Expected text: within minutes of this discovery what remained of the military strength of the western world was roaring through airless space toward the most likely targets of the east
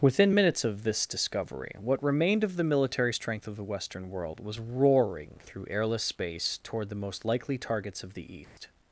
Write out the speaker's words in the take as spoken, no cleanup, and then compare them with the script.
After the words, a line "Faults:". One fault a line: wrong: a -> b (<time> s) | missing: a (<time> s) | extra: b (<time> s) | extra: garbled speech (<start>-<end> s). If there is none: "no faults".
within minutes of this discovery what remained of the military strength of the western world was roaring through airless space toward the most likely targets of the east
Faults:
no faults